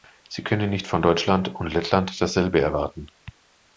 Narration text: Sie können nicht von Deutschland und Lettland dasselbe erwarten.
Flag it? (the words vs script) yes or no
no